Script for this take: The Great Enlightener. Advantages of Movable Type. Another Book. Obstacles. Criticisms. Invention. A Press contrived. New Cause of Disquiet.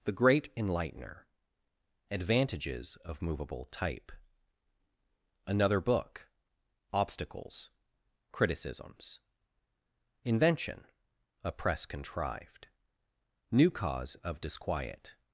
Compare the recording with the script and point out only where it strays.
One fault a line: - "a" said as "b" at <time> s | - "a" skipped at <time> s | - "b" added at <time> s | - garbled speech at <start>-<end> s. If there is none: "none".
none